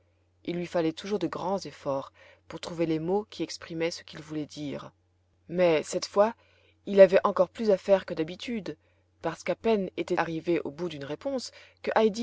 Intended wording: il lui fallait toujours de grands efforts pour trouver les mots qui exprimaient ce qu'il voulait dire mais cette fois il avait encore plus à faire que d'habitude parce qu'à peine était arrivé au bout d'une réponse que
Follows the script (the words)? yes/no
yes